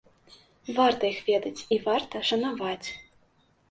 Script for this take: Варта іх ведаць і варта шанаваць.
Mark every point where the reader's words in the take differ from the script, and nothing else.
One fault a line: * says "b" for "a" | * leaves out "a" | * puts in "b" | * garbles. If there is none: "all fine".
all fine